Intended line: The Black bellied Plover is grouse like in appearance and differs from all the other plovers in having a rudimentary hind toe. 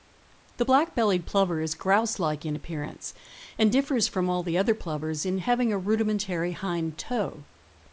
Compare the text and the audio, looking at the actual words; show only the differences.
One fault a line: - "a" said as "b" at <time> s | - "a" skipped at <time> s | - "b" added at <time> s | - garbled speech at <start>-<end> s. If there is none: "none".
none